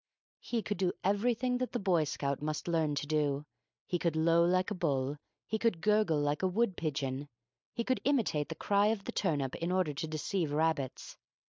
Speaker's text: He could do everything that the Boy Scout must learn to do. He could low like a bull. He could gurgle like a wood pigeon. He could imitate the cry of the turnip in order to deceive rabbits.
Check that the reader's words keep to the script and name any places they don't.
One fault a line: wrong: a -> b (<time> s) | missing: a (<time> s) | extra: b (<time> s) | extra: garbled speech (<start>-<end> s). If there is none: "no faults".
no faults